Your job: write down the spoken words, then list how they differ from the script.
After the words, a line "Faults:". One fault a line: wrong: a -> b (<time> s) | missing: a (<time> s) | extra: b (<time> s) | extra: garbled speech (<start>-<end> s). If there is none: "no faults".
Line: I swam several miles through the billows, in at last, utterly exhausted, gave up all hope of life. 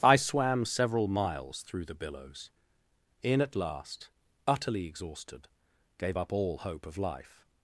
I swam several miles through the billows, in at last, utterly exhausted, gave up all hope of life.
Faults:
no faults